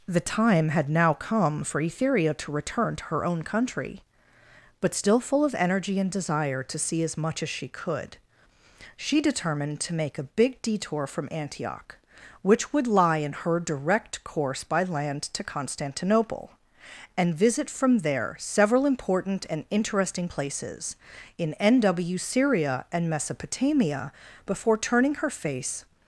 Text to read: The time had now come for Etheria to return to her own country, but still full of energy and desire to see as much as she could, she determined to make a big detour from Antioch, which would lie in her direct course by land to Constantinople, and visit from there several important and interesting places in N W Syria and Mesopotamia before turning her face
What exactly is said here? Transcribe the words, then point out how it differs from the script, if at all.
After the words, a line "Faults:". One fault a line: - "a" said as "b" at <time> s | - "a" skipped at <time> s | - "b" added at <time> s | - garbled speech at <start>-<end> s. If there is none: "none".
The time had now come for Etheria to return to her own country, but still full of energy and desire to see as much as she could, she determined to make a big detour from Antioch, which would lie in her direct course by land to Constantinople, and visit from there several important and interesting places in N W Syria and Mesopotamia before turning her face
Faults:
none